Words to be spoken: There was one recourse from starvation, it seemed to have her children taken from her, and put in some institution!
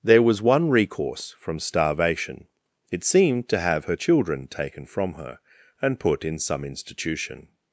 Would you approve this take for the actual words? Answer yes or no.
yes